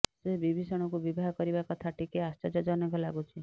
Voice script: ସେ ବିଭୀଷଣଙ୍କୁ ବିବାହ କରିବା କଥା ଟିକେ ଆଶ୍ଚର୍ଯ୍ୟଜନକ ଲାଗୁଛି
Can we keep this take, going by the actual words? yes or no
yes